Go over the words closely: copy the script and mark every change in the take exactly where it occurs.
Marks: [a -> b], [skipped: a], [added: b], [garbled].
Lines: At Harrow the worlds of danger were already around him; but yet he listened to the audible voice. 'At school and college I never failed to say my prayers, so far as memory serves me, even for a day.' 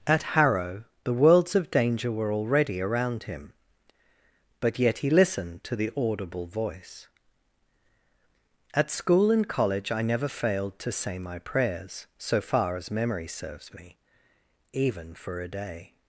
At Harrow the worlds of danger were already around him; but yet he listened to the audible voice. 'At school and college I never failed to say my prayers, so far as memory serves me, even for a day.'